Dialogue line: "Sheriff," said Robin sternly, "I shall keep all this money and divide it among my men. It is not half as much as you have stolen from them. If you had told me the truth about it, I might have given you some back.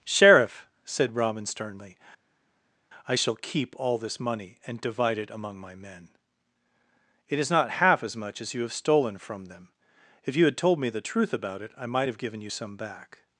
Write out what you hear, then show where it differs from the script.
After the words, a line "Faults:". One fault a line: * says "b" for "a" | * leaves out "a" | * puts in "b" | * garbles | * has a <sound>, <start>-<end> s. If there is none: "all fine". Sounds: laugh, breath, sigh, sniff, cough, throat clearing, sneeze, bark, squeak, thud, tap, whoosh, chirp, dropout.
"Sheriff," said Robin sternly, "I shall keep all this money and divide it among my men. It is not half as much as you have stolen from them. If you had told me the truth about it, I might have given you some back.
Faults:
all fine